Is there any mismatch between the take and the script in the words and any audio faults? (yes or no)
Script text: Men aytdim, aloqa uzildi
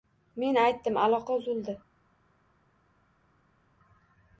no